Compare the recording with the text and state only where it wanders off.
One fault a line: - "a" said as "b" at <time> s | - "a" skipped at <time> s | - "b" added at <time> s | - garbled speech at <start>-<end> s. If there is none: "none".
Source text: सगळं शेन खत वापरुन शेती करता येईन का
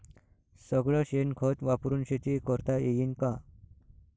none